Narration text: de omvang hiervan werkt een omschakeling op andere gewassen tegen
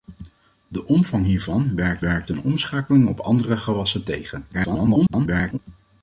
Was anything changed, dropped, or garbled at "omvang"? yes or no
no